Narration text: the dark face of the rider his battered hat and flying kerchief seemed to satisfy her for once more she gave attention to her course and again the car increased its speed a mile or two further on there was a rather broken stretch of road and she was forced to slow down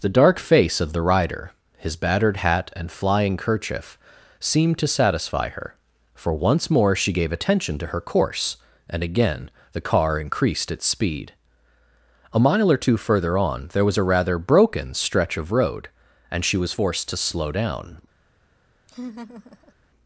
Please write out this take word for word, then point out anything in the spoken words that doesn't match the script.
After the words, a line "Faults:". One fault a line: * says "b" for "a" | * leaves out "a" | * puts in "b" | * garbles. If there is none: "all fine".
the dark face of the rider his battered hat and flying kerchief seemed to satisfy her for once more she gave attention to her course and again the car increased its speed a mile or two further on there was a rather broken stretch of road and she was forced to slow down
Faults:
all fine